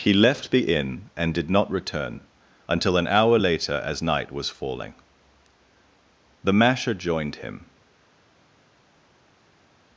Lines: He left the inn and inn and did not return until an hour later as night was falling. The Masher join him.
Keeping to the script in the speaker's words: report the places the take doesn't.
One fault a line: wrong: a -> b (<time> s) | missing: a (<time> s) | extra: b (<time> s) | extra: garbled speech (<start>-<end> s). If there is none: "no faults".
missing: inn and (1.3 s)
wrong: join -> joined (6.9 s)